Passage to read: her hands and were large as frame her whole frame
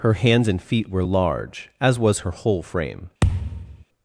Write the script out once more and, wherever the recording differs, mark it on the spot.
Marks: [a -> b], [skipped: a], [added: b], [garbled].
her hands and [added: feet] were large as [frame -> was] her whole frame